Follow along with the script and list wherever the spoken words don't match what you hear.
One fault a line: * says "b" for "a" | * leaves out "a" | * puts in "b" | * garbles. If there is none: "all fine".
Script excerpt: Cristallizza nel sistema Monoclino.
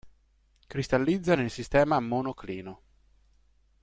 all fine